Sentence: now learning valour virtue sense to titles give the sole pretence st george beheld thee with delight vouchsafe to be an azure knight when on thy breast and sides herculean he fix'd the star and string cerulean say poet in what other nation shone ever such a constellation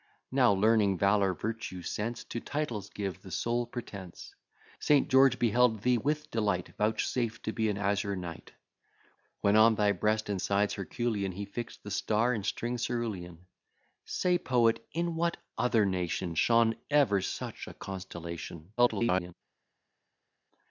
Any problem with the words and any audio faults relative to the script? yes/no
yes